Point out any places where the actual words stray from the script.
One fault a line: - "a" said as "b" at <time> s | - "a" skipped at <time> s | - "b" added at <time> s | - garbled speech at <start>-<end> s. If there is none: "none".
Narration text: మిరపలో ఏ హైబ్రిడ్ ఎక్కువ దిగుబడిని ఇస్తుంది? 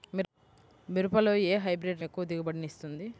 none